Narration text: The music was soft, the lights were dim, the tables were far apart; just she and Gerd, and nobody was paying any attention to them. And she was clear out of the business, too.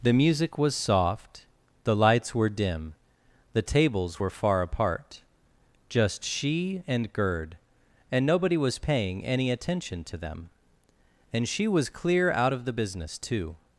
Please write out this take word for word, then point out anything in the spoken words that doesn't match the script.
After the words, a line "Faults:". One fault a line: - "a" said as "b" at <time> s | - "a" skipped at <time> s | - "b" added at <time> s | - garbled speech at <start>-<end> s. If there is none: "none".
The music was soft, the lights were dim, the tables were far apart; just she and Gerd, and nobody was paying any attention to them. And she was clear out of the business, too.
Faults:
none